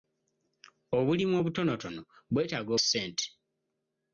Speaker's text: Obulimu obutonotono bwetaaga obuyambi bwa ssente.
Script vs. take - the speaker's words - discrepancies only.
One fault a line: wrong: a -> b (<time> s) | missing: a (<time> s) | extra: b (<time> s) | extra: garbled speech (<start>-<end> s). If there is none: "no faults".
missing: obuyambi bwa (2.7 s)